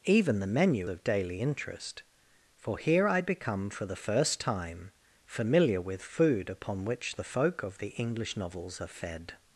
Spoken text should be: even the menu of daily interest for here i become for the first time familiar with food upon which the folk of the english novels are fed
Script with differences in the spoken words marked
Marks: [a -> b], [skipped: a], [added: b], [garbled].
even the menu of daily interest for here i become for the first time familiar with food upon which the folk of the english novels are fed